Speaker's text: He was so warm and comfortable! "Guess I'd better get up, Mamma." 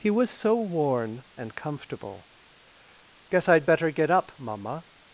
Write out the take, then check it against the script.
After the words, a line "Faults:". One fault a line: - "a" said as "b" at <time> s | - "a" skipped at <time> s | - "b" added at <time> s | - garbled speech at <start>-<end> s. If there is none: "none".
He was so worn and comfortable! "Guess I'd better get up, Mamma."
Faults:
- "warm" said as "worn" at 0.6 s